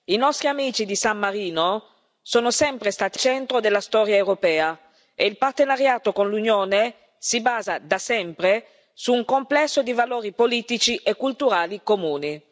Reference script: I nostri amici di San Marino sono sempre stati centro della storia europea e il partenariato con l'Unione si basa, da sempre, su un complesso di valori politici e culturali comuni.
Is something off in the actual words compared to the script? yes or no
no